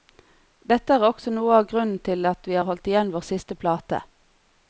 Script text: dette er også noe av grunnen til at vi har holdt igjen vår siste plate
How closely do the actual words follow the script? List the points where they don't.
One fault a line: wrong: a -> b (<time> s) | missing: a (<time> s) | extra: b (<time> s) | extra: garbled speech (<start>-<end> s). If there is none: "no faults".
no faults